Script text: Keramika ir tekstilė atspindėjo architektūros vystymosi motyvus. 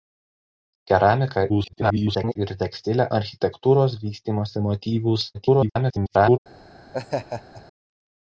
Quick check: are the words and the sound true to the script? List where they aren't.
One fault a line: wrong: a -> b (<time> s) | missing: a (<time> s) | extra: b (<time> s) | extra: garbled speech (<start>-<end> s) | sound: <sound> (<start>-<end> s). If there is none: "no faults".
extra: garbled speech (1.5-2.4 s)
missing: atspindėjo (3.1 s)
extra: garbled speech (5.3-6.4 s)
sound: laugh (6.9-7.6 s)